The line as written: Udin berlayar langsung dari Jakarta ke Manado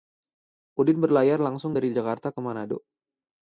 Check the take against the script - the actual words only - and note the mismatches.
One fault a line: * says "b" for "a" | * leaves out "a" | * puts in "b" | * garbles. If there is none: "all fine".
all fine